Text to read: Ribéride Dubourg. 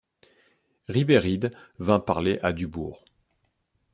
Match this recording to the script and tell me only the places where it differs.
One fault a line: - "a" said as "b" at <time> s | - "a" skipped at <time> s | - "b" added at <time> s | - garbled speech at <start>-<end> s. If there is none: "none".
- "vint parler à" added at 1.8 s